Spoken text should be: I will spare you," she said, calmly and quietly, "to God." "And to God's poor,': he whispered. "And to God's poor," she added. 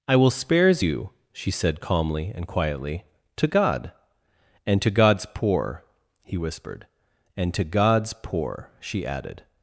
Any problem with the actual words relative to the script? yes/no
yes